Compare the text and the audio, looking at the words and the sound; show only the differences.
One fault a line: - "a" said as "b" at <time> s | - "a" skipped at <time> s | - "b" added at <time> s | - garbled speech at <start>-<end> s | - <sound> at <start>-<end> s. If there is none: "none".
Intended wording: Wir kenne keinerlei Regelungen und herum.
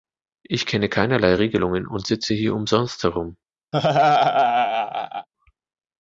- "Wir" said as "Ich" at 0.4 s
- "sitze hier umsonst" added at 2.1 s
- laugh at 3.7-5.3 s